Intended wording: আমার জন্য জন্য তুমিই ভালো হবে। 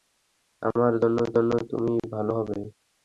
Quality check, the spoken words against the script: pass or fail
pass